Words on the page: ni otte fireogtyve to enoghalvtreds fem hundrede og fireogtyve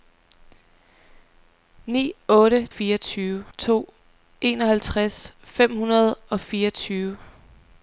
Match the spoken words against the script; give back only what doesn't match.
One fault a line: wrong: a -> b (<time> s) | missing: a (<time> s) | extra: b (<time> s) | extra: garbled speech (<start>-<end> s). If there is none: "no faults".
no faults